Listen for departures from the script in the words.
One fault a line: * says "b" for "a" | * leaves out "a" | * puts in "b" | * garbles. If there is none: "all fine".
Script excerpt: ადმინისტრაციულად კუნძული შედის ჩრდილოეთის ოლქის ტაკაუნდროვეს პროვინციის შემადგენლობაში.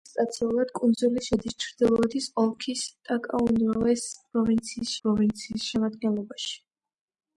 * puts in "პროვინციის"